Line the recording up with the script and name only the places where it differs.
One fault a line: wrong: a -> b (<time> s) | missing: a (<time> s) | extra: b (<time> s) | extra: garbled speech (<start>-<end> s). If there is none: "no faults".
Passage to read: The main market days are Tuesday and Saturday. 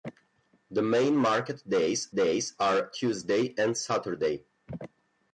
extra: days (2.1 s)